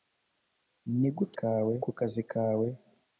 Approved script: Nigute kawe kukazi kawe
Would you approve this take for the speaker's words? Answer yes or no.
yes